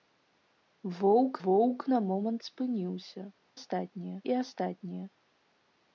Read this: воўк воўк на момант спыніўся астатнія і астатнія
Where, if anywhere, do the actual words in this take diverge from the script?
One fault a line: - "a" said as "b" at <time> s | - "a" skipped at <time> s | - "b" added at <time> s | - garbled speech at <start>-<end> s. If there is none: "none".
none